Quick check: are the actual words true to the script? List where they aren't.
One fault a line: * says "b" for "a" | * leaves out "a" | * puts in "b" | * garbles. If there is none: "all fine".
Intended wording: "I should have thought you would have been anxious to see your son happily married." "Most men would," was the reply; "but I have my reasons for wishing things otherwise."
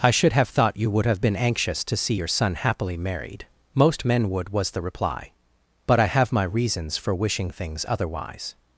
all fine